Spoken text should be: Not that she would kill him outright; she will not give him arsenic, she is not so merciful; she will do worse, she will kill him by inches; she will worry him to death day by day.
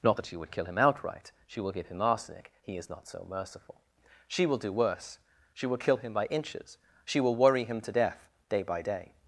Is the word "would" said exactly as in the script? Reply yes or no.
yes